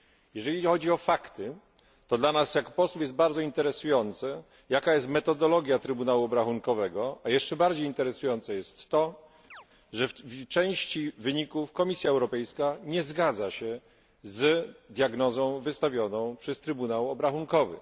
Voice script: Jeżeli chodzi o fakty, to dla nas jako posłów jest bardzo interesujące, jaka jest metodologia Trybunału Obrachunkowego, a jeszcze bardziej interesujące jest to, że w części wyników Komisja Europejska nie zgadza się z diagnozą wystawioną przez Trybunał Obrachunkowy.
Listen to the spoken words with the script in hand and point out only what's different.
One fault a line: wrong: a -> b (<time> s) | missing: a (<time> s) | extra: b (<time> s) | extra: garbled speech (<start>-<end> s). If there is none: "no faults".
no faults